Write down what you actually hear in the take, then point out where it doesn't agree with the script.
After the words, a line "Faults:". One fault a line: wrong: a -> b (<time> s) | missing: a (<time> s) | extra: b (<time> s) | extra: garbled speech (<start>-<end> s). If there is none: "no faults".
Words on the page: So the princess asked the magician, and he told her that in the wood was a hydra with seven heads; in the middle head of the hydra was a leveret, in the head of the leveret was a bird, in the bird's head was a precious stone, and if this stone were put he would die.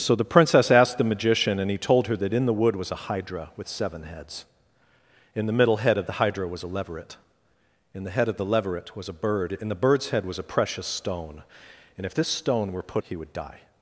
So the princess asked the magician, and he told her that in the wood was a hydra with seven heads; in the middle head of the hydra was a leveret, in the head of the leveret was a bird, in the bird's head was a precious stone, and if this stone were put he would die.
Faults:
no faults